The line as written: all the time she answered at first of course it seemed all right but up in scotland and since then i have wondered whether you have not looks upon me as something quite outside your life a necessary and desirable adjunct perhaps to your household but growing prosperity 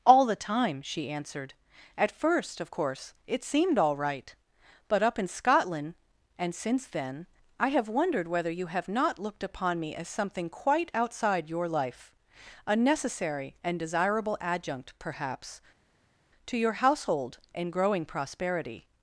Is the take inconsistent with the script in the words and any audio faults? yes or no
yes